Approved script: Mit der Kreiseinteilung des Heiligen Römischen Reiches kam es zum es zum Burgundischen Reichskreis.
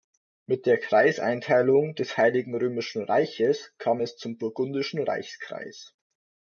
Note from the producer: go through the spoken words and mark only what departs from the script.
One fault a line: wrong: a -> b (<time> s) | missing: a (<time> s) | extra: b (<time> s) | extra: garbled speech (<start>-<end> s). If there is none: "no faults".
missing: es zum (4.4 s)